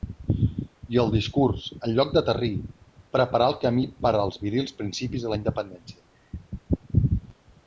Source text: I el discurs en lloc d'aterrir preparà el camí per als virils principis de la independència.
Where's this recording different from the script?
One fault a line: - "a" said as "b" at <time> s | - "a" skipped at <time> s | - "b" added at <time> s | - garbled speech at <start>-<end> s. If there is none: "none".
none